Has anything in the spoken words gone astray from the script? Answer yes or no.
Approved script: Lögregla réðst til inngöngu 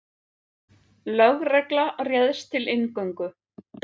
no